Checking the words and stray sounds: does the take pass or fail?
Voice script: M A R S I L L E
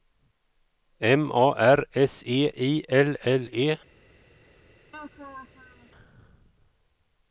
fail